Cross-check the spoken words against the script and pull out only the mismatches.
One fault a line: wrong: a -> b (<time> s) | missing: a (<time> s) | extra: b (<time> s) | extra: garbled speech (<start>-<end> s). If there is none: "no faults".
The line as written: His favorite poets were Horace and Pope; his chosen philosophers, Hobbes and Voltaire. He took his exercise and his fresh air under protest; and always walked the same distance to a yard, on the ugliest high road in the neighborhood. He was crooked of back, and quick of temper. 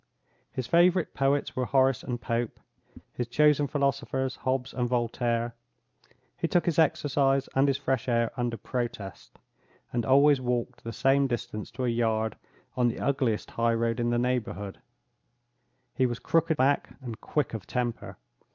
missing: of (16.6 s)